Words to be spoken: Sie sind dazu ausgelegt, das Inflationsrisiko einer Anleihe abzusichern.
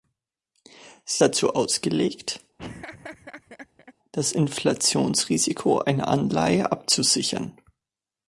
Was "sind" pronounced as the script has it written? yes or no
no